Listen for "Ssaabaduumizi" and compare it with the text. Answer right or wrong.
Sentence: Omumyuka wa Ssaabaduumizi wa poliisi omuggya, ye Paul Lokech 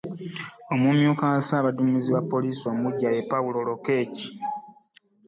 right